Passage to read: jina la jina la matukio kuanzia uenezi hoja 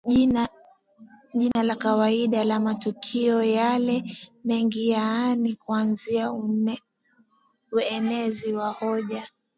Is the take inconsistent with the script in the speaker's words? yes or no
yes